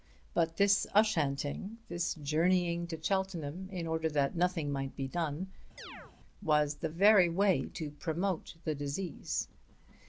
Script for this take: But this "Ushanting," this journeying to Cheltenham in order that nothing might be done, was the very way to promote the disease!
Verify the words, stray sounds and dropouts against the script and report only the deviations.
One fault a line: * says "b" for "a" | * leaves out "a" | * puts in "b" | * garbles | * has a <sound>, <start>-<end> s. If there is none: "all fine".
* has a chirp, 5.8-6.1 s